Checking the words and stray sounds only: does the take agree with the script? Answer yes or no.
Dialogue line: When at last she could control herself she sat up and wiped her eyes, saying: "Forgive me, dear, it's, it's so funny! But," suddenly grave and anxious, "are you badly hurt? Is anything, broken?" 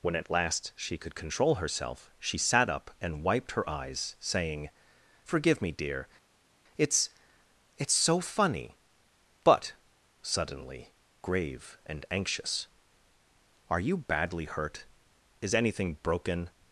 yes